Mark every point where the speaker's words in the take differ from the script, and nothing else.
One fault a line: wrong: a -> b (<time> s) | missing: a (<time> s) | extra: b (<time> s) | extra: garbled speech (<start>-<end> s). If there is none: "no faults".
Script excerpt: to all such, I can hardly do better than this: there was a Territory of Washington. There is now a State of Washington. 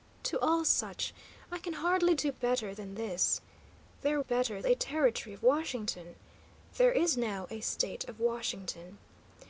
wrong: was -> better (4.2 s)